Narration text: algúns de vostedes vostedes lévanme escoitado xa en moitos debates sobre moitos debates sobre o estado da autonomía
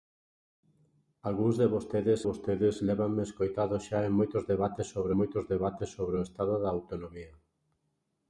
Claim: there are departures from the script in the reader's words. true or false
false